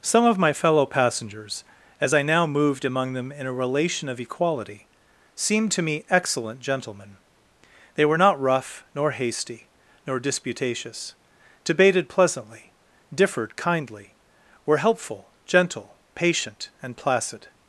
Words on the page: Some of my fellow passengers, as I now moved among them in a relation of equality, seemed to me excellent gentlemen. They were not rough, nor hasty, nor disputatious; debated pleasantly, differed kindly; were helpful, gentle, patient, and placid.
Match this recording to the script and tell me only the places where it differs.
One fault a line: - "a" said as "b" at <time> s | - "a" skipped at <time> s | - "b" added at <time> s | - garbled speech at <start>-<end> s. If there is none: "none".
none